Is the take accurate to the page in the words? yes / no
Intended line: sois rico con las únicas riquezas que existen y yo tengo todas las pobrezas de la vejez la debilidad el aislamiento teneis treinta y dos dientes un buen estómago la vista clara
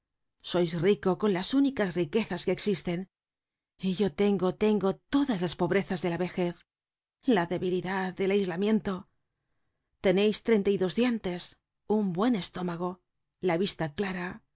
no